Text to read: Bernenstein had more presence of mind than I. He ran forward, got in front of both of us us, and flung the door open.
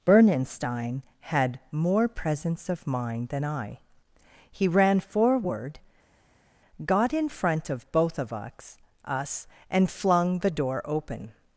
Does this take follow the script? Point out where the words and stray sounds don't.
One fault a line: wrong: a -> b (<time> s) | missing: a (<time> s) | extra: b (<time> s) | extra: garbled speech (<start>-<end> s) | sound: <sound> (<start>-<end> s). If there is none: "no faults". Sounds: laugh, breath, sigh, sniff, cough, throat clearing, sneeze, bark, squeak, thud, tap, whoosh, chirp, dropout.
no faults